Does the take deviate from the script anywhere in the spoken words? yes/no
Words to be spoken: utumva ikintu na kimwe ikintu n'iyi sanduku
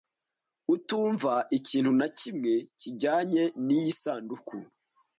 yes